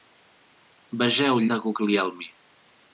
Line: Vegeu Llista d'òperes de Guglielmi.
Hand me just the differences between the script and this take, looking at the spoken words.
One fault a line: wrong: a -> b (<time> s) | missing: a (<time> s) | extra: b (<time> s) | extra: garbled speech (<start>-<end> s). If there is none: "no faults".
missing: Llista d'òperes (1.4 s)